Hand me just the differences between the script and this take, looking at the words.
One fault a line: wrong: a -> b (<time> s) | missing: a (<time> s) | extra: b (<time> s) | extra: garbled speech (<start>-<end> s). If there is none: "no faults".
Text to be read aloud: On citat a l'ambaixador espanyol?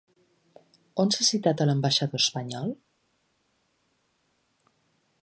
extra: s'ha (1.1 s)